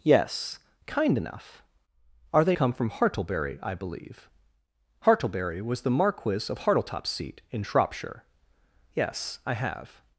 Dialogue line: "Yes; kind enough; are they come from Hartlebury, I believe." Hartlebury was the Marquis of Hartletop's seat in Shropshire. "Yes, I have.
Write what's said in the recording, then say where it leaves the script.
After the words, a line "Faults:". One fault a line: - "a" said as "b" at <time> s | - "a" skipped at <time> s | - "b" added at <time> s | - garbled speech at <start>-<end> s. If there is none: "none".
"Yes; kind enough; are they come from Hartlebury, I believe." Hartlebury was the Marquis of Hartletop's seat in Shropshire. "Yes, I have.
Faults:
none